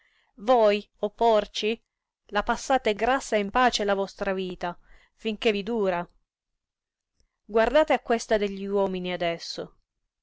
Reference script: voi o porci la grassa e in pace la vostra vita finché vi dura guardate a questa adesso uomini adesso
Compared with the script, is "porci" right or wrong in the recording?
right